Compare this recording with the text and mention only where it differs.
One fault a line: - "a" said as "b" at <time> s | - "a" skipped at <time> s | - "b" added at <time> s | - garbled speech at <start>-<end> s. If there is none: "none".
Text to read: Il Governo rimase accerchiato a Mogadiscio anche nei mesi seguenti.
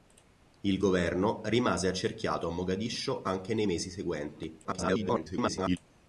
- garbled speech at 4.6-5.8 s